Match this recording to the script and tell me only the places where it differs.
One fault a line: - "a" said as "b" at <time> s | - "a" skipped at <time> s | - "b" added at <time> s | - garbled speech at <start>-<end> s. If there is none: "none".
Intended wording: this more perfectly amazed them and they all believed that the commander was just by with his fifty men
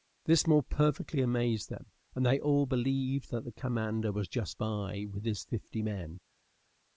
none